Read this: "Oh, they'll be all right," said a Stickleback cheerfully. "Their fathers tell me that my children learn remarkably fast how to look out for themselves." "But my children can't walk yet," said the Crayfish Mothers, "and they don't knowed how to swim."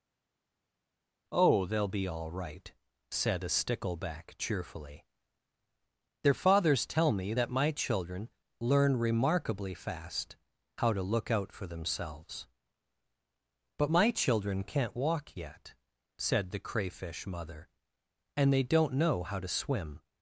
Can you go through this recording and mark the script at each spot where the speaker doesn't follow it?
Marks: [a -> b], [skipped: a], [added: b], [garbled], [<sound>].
"Oh, they'll be all right," said a Stickleback cheerfully. "Their fathers tell me that my children learn remarkably fast how to look out for themselves." "But my children can't walk yet," said the Crayfish [Mothers, -> Mother] "and they don't [knowed -> know] how to swim."